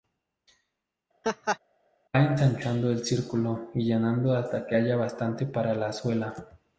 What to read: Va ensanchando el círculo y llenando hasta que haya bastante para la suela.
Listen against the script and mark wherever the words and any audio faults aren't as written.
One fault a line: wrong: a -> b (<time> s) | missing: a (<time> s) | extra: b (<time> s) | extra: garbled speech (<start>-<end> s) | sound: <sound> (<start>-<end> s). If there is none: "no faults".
sound: laugh (1.2-1.6 s)